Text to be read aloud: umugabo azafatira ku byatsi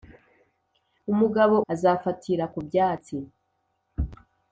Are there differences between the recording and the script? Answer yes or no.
no